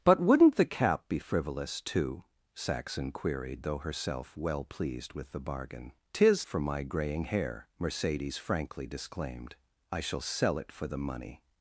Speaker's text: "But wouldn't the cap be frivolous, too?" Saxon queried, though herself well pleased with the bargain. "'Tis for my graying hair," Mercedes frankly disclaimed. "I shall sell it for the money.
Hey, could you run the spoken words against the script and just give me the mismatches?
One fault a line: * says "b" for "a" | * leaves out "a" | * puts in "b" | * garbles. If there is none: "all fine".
all fine